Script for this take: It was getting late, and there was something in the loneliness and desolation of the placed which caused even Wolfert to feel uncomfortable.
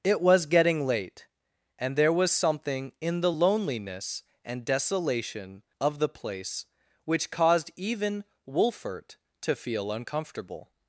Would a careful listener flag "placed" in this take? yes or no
yes